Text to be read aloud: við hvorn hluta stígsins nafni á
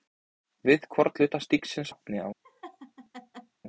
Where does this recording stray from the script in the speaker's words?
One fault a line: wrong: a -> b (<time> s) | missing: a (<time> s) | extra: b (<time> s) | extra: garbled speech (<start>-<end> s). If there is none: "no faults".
no faults